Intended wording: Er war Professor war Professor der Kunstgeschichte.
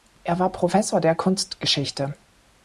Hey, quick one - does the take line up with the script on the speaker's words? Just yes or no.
no